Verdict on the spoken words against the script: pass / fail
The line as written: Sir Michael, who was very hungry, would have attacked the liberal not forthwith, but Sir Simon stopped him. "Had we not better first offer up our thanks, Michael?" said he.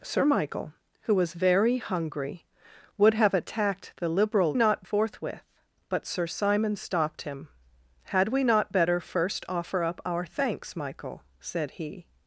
pass